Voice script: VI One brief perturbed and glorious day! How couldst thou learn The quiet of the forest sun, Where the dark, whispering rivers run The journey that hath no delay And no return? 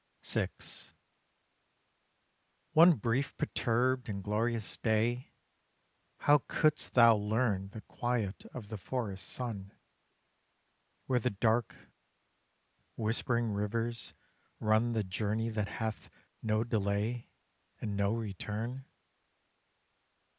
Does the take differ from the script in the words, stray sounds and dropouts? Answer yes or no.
no